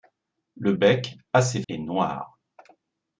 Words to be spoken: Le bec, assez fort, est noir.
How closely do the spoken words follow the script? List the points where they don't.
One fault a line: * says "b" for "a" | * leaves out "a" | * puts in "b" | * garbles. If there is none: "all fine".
* leaves out "fort"